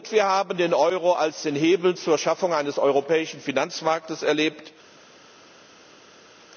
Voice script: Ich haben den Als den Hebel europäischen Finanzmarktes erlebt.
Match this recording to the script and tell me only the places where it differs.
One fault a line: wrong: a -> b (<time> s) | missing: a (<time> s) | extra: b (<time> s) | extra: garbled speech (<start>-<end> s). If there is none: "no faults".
wrong: Ich -> Wir (0.1 s)
extra: Euro (0.7 s)
extra: zur Schaffung eines (1.9 s)